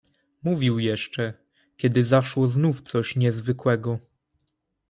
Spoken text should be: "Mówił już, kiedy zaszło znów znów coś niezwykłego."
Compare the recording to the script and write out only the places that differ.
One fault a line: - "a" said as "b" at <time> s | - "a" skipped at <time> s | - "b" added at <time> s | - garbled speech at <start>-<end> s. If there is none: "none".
- "już" said as "jeszcze" at 0.8 s
- "znów" skipped at 2.8 s